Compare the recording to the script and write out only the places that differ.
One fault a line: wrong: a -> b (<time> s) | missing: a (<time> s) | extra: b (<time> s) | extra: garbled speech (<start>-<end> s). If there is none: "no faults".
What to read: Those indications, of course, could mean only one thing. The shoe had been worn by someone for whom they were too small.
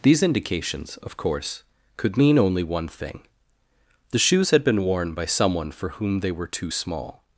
wrong: Those -> These (0.0 s)
wrong: shoe -> shoes (4.2 s)